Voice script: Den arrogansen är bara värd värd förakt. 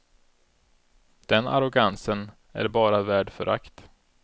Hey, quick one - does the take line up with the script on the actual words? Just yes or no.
no